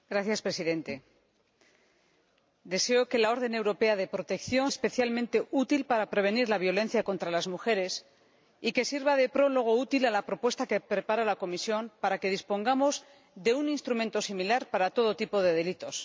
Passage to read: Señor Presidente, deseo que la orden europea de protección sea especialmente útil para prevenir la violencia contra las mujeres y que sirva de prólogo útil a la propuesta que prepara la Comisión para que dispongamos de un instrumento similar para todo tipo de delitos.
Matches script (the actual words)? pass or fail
fail